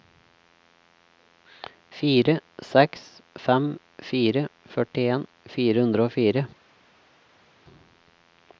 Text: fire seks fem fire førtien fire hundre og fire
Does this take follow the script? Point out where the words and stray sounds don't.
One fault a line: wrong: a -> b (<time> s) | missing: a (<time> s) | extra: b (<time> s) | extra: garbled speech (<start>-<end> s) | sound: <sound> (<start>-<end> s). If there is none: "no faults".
no faults